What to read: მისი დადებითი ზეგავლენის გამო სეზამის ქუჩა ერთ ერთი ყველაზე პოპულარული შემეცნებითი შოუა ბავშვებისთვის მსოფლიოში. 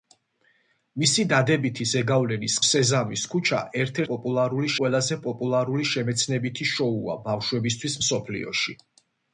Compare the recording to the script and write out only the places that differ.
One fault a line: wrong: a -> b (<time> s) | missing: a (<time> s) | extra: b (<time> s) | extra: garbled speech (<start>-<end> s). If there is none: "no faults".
missing: გამო (2.5 s)
wrong: ერთი -> პოპულარული (4.1 s)